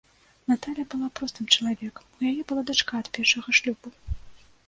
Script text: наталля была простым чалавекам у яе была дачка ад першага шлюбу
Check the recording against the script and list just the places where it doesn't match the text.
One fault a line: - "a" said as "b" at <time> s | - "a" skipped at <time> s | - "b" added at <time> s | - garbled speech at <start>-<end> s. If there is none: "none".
none